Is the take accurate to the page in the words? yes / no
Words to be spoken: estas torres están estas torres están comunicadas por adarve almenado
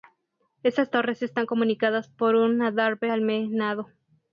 no